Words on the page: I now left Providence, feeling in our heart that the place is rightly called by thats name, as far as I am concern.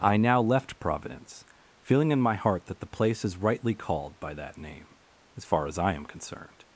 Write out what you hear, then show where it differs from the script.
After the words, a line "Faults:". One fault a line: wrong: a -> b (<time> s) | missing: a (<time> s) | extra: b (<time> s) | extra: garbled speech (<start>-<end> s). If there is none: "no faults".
I now left Providence, feeling in my heart that the place is rightly called by that name, as far as I am concerned.
Faults:
wrong: our -> my (2.2 s)
wrong: thats -> that (4.3 s)
wrong: concern -> concerned (6.1 s)